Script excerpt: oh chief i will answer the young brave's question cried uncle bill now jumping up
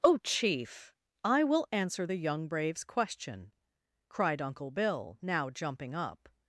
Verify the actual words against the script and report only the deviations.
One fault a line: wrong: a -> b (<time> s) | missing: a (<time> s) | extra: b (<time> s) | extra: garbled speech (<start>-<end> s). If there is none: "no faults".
no faults